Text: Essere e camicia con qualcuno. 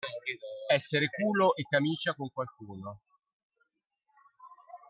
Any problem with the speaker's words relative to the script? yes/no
yes